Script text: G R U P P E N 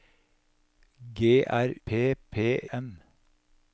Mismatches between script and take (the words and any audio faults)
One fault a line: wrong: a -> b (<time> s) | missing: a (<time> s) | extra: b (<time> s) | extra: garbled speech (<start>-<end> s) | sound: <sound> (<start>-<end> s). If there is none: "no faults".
missing: U (1.8 s)
missing: E (2.6 s)